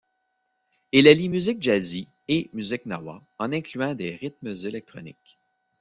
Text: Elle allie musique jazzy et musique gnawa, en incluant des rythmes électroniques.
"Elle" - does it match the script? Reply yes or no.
no